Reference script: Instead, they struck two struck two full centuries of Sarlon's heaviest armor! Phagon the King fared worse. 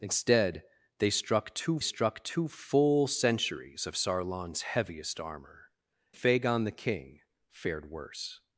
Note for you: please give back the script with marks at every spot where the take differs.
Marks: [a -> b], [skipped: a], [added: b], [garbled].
Instead, they struck two struck two full centuries of Sarlon's heaviest armor! Phagon the King fared worse.